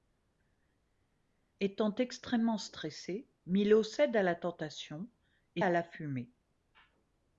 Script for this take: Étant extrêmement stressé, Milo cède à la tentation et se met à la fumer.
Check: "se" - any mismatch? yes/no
yes